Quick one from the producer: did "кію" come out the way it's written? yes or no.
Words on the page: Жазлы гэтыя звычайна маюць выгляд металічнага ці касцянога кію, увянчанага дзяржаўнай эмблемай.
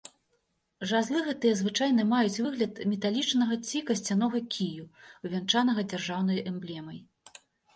yes